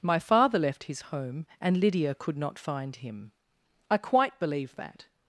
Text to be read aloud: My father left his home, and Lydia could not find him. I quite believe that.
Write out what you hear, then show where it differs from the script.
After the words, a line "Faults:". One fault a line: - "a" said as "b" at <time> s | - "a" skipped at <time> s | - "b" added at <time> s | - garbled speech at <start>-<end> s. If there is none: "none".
My father left his home, and Lydia could not find him. I quite believe that.
Faults:
none